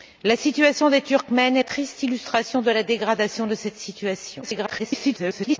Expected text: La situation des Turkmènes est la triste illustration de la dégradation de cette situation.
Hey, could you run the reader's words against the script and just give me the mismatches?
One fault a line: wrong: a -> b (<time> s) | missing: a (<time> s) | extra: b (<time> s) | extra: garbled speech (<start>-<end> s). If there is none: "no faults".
missing: la (1.6 s)
extra: garbled speech (4.4-5.6 s)